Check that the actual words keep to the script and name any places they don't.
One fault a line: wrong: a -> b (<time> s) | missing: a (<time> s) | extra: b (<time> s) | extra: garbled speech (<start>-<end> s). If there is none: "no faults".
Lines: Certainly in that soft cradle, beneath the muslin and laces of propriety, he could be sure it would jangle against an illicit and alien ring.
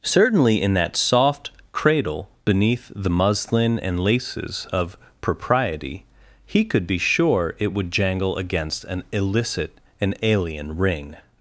no faults